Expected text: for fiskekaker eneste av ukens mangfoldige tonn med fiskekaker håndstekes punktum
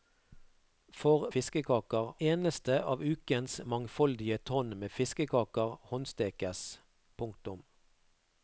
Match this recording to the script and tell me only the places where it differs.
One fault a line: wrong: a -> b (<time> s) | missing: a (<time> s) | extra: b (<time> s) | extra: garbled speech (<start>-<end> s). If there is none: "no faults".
no faults